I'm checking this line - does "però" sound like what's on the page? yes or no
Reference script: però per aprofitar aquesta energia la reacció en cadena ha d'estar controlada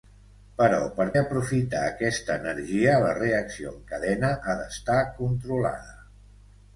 yes